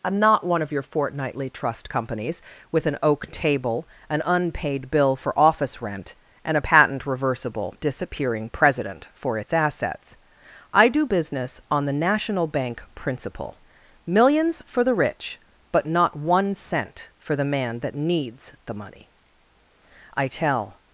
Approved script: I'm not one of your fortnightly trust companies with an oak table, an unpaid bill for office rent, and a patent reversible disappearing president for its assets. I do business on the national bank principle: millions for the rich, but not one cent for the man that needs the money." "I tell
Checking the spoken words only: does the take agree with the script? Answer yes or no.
yes